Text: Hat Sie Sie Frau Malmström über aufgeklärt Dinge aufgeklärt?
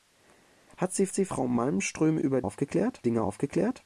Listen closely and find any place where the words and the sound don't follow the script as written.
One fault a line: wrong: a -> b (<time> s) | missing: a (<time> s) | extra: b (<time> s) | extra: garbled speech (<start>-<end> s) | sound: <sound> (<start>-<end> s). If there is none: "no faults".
no faults